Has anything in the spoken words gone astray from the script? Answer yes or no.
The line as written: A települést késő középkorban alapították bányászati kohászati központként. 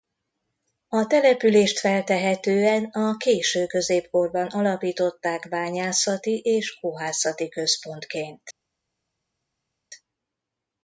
yes